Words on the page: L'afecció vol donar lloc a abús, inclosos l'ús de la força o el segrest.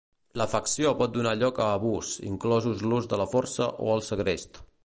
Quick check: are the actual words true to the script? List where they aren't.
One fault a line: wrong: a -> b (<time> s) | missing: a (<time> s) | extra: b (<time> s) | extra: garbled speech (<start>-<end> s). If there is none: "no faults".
wrong: vol -> pot (1.0 s)